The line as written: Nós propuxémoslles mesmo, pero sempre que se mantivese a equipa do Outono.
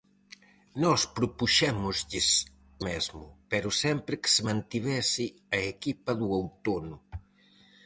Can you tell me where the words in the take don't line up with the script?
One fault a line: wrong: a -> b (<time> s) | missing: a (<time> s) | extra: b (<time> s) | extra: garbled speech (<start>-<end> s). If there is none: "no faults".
no faults